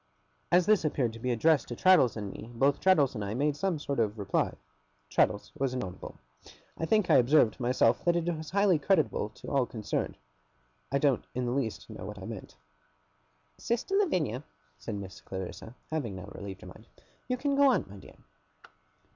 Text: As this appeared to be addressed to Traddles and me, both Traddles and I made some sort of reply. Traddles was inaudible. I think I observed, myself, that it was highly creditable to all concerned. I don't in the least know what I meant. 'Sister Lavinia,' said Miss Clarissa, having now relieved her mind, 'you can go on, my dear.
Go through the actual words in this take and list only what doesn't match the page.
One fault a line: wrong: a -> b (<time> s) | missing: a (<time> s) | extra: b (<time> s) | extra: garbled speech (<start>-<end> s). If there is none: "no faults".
no faults